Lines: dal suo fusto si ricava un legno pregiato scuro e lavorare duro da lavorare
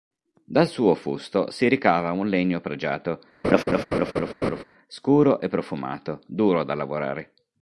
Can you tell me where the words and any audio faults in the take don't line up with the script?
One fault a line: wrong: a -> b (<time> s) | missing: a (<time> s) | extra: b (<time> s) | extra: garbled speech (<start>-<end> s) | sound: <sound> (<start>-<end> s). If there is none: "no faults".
sound: laugh (3.4-4.6 s)
wrong: lavorare -> profumato (5.5 s)